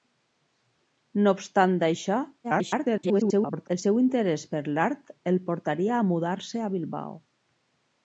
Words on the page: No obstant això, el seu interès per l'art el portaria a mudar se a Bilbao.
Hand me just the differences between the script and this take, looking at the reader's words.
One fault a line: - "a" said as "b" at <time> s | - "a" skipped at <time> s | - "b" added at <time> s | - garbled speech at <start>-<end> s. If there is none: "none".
- garbled speech at 2.4-3.7 s